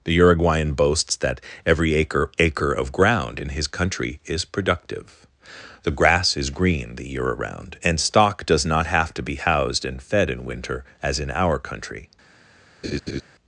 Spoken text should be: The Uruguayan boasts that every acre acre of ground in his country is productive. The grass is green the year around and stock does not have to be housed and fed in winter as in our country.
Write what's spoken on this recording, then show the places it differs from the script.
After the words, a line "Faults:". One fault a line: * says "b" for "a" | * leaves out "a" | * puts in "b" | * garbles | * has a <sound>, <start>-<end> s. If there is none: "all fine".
The Uruguayan boasts that every acre acre of ground in his country is productive. The grass is green the year around and stock does not have to be housed and fed in winter as in our country.
Faults:
* has a laugh, 12.8-13.2 s